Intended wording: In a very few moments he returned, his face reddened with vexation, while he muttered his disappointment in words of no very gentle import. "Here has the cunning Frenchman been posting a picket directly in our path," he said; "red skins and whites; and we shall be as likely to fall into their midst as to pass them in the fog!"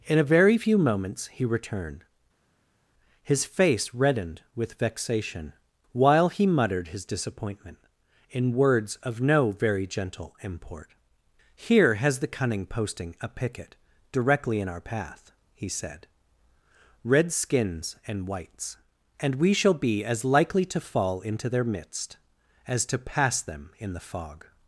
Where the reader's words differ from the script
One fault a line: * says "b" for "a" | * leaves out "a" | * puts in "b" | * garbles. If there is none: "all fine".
* leaves out "Frenchman been"